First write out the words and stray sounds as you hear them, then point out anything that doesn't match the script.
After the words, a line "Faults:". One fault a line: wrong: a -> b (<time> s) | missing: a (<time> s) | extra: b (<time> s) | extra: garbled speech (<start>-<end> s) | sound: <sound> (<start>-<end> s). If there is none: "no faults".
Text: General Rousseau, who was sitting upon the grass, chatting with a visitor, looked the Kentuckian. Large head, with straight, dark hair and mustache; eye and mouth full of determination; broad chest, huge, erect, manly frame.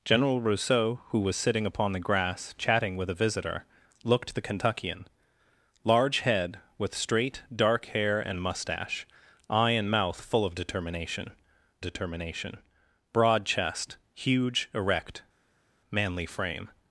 General Rousseau, who was sitting upon the grass, chatting with a visitor, looked the Kentuckian. Large head, with straight, dark hair and mustache; eye and mouth full of determination determination; broad chest, huge, erect, manly frame.
Faults:
extra: determination (11.8 s)